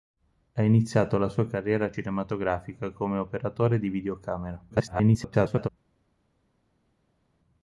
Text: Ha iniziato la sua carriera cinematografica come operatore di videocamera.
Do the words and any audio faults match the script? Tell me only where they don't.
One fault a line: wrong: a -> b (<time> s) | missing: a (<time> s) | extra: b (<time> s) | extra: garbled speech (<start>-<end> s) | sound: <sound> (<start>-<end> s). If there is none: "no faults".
extra: garbled speech (4.7-5.7 s)